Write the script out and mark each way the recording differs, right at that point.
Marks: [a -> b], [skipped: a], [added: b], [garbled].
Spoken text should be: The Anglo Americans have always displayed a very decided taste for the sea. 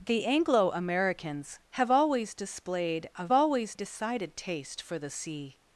The Anglo Americans have always displayed a [very -> always] decided taste for the sea.